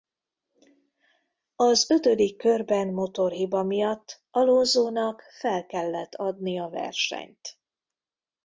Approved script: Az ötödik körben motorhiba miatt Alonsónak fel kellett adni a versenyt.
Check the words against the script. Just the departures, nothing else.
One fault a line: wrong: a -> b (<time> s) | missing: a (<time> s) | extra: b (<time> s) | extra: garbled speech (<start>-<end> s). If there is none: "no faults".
no faults